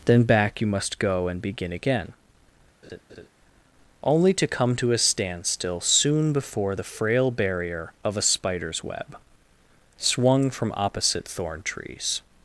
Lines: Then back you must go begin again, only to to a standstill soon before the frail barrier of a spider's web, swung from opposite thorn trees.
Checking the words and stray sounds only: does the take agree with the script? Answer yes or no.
no